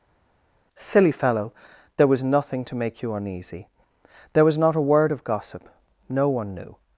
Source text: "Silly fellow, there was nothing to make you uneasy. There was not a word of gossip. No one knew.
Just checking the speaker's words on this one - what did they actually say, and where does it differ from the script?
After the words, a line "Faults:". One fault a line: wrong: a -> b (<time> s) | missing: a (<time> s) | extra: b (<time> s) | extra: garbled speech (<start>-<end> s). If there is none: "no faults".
"Silly fellow, there was nothing to make you uneasy. There was not a word of gossip. No one knew.
Faults:
no faults